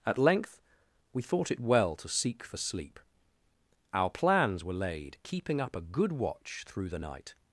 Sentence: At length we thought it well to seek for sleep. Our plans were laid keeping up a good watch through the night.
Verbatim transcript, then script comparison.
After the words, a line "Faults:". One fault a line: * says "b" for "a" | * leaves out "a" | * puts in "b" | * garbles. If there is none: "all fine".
At length we thought it well to seek for sleep. Our plans were laid keeping up a good watch through the night.
Faults:
all fine